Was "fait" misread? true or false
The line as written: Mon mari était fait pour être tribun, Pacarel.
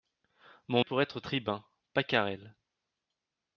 true